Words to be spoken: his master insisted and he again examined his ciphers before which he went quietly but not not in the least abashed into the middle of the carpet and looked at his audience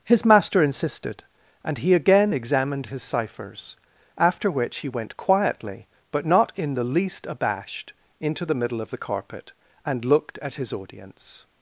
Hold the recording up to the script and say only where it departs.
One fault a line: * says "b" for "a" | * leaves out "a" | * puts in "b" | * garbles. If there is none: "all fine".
* says "after" for "before"
* leaves out "not"